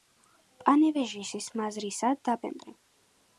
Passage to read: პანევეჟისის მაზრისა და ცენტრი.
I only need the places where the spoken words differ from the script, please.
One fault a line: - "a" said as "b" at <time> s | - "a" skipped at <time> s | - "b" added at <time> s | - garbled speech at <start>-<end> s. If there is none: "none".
none